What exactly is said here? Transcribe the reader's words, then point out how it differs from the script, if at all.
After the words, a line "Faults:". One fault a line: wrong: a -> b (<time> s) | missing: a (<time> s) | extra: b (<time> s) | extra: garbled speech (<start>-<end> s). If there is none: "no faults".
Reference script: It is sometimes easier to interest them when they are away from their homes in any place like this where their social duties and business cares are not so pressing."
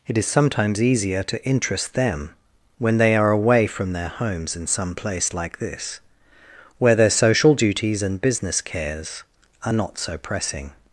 It is sometimes easier to interest them when they are away from their homes in some place like this where their social duties and business cares are not so pressing."
Faults:
wrong: any -> some (4.7 s)